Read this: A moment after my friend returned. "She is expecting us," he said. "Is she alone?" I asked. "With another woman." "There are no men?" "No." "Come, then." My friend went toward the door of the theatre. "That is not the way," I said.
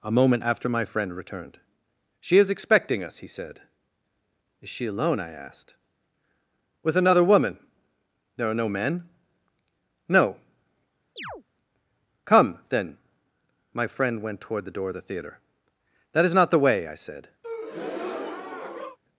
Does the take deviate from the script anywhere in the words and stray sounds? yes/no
yes